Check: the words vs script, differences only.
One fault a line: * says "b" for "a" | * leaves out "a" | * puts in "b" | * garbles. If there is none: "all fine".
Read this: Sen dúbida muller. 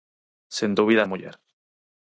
all fine